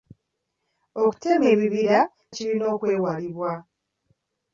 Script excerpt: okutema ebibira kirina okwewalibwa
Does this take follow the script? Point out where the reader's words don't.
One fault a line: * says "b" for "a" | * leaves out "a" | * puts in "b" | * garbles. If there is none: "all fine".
all fine